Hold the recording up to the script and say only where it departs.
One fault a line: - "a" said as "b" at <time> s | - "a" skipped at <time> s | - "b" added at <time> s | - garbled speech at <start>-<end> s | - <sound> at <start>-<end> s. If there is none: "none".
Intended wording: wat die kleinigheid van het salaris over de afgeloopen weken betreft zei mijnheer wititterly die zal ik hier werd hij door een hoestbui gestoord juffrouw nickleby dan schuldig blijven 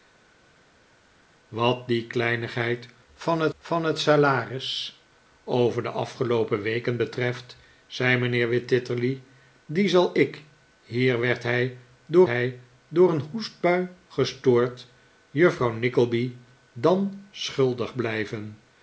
- "van het" added at 3.6 s
- "hij door" added at 12.2 s